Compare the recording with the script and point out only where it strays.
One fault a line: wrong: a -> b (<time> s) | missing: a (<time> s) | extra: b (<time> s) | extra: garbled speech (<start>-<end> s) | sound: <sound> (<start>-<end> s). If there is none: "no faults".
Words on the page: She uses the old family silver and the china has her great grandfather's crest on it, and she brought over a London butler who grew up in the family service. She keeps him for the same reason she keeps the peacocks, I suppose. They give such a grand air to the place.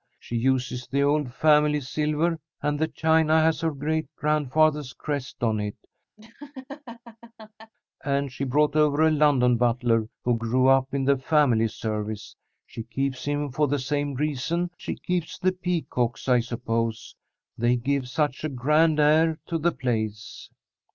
sound: laugh (6.2-7.7 s)